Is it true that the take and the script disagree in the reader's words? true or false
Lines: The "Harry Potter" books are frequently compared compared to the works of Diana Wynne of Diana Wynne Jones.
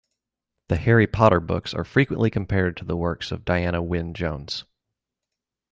true